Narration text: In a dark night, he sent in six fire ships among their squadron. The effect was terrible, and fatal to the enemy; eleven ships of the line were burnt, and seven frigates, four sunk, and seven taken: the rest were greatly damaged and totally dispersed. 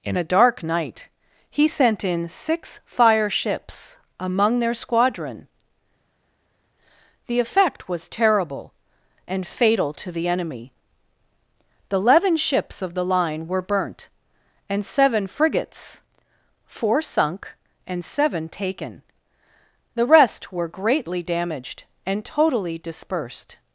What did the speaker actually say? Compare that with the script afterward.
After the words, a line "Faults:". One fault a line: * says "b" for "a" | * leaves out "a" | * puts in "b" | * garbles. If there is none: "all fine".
In a dark night, he sent in six fire ships among their squadron. The effect was terrible, and fatal to the enemy; the eleven ships of the line were burnt, and seven frigates, four sunk, and seven taken: the rest were greatly damaged and totally dispersed.
Faults:
* puts in "the"